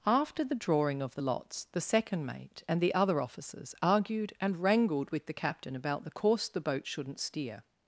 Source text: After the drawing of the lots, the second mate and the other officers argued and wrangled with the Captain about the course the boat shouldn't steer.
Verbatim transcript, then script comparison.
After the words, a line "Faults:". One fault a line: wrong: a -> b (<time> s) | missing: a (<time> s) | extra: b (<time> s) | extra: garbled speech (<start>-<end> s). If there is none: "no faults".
After the drawing of the lots, the second mate and the other officers argued and wrangled with the Captain about the course the boat shouldn't steer.
Faults:
no faults